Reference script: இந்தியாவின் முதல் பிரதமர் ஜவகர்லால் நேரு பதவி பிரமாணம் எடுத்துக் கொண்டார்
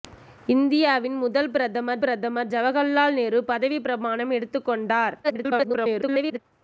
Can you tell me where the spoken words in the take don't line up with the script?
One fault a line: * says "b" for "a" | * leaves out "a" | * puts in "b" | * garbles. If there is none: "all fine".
* puts in "பிரதமர்"
* garbles